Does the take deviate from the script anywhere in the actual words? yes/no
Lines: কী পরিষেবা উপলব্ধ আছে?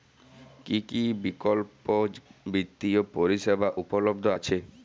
yes